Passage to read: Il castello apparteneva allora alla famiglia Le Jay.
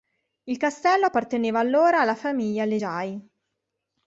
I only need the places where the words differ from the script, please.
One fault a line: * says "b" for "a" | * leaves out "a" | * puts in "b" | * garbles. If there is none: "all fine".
all fine